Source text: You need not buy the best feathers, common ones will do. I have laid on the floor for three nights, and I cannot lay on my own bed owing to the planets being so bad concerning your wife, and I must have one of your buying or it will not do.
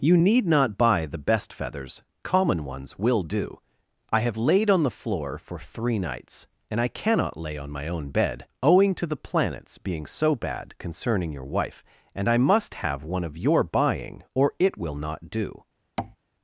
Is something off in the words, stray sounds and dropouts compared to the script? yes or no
yes